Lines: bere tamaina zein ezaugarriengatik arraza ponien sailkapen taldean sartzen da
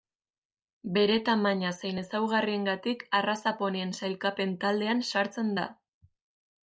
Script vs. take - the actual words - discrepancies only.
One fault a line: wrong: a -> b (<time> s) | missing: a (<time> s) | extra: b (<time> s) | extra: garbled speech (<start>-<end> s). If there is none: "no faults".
no faults